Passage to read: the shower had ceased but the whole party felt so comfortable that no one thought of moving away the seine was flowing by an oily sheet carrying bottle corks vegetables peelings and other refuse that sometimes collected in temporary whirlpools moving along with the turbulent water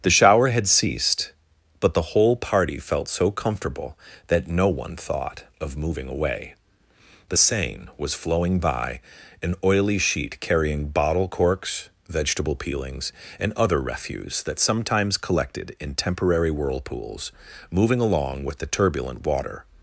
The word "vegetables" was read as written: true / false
false